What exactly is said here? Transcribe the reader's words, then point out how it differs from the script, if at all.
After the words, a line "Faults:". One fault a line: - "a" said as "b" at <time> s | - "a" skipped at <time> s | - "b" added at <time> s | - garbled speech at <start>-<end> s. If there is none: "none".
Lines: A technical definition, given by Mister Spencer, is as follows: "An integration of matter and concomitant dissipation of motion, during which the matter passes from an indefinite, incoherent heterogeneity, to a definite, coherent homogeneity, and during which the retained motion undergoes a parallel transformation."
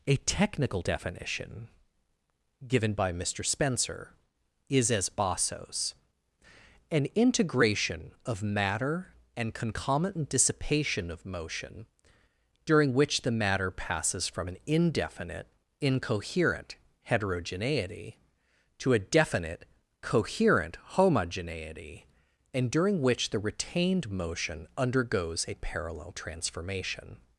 A technical definition, given by Mister Spencer, is as bassos: "An integration of matter and concomitant dissipation of motion, during which the matter passes from an indefinite, incoherent heterogeneity, to a definite, coherent homogeneity, and during which the retained motion undergoes a parallel transformation."
Faults:
- "follows" said as "bassos" at 5.1 s